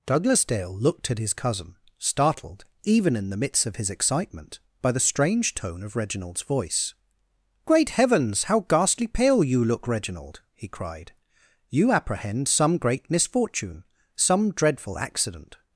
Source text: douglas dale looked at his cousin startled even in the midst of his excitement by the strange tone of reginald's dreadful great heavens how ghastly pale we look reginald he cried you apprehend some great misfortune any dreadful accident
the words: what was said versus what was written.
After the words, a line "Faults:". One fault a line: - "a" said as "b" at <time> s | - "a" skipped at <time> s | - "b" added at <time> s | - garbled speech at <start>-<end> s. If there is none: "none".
douglas dale looked at his cousin startled even in the midst of his excitement by the strange tone of reginald's voice great heavens how ghastly pale you look reginald he cried you apprehend some great misfortune some dreadful accident
Faults:
- "dreadful" said as "voice" at 6.4 s
- "we" said as "you" at 9.4 s
- "any" said as "some" at 14.2 s